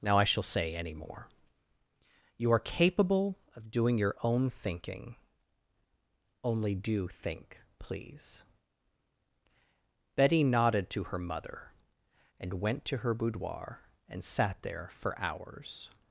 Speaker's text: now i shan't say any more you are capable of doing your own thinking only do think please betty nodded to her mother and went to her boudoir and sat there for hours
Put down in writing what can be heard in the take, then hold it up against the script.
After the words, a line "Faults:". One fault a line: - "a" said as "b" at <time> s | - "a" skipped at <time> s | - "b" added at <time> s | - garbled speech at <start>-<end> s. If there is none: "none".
now i shall say any more you are capable of doing your own thinking only do think please betty nodded to her mother and went to her boudoir and sat there for hours
Faults:
- "shan't" said as "shall" at 0.2 s